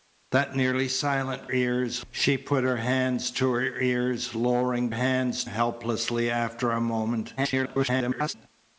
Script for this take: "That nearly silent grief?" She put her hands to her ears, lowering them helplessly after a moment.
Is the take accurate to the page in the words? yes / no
no